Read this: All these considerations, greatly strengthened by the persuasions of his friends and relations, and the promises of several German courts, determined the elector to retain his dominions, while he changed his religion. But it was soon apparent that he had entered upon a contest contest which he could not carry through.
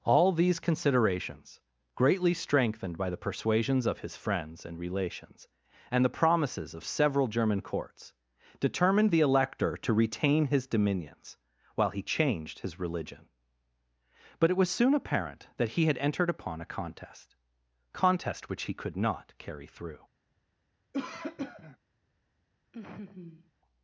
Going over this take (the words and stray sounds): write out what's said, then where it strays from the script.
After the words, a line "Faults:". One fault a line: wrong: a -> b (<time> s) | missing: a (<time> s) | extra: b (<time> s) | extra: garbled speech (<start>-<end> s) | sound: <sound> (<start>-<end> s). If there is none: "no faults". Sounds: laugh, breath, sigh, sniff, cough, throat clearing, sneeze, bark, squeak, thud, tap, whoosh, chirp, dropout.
All these considerations, greatly strengthened by the persuasions of his friends and relations, and the promises of several German courts, determined the elector to retain his dominions, while he changed his religion. But it was soon apparent that he had entered upon a contest contest which he could not carry through.
Faults:
sound: cough (20.9-21.8 s)
sound: laugh (22.7-23.5 s)